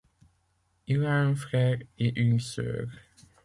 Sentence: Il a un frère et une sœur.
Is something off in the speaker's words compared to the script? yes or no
no